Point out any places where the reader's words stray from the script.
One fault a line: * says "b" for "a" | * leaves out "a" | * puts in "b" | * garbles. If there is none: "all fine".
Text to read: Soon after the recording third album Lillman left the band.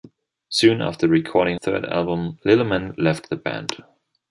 all fine